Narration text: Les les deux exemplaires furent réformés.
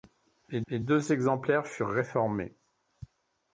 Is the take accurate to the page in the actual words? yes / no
yes